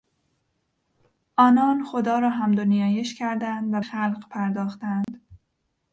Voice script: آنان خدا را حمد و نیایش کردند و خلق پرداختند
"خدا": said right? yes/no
yes